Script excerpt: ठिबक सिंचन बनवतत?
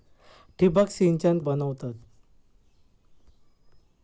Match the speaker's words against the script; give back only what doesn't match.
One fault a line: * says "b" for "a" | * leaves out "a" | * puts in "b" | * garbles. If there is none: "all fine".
all fine